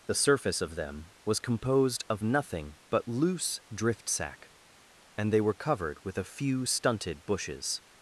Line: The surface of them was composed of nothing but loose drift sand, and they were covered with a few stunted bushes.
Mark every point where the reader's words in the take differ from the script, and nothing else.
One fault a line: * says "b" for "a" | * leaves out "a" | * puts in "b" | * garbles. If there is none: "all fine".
* says "sack" for "sand"